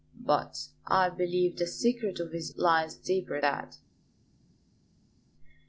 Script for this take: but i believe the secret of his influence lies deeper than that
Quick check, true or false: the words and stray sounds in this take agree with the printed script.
false